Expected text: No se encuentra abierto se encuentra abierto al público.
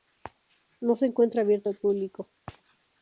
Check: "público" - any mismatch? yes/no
no